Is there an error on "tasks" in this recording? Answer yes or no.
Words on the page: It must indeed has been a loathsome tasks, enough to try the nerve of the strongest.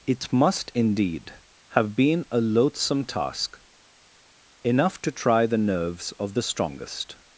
yes